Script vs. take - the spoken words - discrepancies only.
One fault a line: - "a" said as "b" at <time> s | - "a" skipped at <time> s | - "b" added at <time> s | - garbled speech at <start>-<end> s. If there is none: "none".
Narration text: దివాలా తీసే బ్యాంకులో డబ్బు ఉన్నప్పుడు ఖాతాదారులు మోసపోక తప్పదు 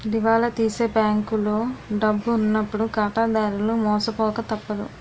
none